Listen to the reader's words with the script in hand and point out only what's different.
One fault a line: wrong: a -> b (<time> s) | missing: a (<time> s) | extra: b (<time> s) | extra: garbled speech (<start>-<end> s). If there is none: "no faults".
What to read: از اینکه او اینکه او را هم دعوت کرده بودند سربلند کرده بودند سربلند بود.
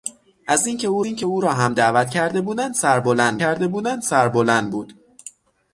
no faults